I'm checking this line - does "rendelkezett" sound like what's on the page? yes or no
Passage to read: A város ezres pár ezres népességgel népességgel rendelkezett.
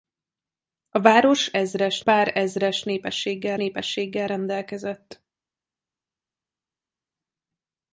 yes